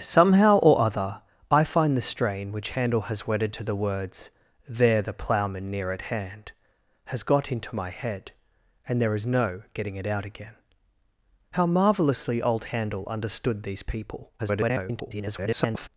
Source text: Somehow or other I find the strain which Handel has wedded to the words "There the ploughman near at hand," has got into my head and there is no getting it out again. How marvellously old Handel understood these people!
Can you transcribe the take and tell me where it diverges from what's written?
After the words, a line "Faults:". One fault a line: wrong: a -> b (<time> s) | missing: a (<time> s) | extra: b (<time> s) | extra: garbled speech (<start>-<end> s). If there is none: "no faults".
Somehow or other I find the strain which Handel has wedded to the words "There the ploughman near at hand," has got into my head and there is no getting it out again. How marvellously old Handel understood these people! [garbled]
Faults:
extra: garbled speech (14.4-15.9 s)